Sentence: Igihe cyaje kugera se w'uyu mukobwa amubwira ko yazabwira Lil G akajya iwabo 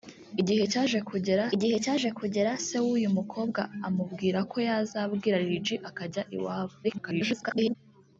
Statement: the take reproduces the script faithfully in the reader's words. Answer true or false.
false